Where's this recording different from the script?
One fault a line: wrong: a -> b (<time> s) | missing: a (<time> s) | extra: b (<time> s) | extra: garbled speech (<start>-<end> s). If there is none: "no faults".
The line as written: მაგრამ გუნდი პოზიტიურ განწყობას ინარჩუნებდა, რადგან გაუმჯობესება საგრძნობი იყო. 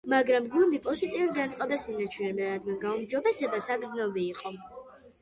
no faults